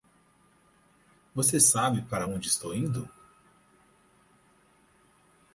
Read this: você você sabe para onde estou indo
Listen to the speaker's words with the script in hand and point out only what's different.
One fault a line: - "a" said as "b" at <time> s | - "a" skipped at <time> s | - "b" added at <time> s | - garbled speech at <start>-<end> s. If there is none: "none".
- "você" skipped at 1.6 s